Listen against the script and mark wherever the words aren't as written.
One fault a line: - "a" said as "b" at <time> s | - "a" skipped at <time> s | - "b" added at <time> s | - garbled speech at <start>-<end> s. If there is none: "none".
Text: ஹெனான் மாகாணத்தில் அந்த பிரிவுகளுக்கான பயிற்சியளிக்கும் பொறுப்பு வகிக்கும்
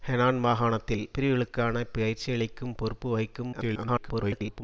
- "அந்த" skipped at 1.1 s
- garbled speech at 3.5-4.6 s